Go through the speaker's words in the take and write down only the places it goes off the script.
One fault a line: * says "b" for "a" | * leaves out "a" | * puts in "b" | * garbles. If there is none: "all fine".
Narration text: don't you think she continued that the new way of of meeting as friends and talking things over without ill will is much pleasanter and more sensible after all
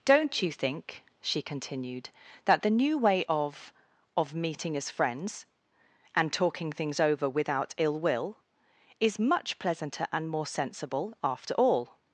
all fine